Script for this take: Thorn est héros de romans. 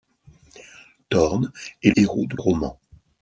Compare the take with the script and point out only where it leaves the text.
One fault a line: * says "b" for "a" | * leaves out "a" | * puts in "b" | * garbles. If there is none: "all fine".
all fine